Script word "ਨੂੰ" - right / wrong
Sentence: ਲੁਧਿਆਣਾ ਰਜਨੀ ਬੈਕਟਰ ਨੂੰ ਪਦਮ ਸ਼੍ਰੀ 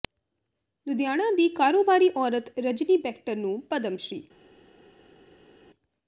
right